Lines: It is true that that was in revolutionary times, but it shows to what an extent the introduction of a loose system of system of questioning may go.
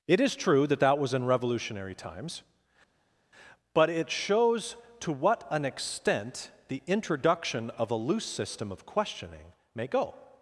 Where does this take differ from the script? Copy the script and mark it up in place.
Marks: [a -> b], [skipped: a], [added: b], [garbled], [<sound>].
It is true that that was in revolutionary times, but it shows to what an extent the introduction of a loose system of [skipped: system of] questioning may go.